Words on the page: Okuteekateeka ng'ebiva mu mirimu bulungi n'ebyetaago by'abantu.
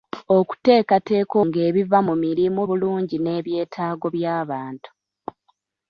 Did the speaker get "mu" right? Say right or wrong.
right